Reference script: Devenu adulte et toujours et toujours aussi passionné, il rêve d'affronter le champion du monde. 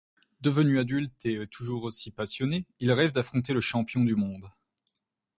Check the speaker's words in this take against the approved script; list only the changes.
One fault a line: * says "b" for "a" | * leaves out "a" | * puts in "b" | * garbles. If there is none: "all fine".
* leaves out "et toujours"